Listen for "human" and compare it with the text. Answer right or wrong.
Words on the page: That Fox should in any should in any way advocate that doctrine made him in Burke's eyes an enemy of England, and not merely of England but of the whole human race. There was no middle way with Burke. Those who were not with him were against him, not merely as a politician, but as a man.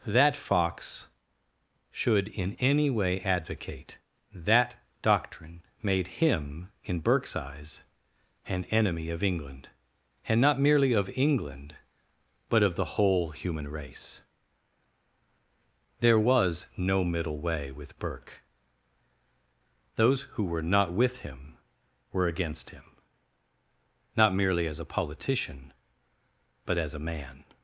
right